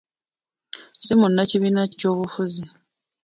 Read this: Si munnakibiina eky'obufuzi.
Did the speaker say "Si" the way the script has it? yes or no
yes